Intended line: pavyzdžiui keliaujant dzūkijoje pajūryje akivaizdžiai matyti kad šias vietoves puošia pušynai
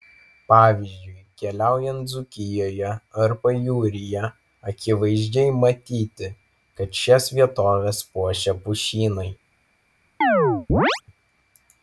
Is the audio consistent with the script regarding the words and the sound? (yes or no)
no